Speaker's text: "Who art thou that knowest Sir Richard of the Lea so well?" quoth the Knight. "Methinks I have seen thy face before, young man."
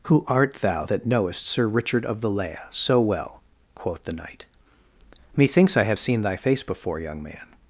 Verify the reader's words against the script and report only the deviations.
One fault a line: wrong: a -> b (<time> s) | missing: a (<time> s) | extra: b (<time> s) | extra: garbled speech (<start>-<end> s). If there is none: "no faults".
no faults